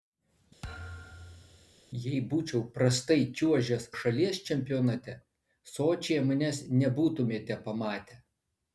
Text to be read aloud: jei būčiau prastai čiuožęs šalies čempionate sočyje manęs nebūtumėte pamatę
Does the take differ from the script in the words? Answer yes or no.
no